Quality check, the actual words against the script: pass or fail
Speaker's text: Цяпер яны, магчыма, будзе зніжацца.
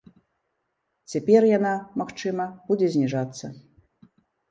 fail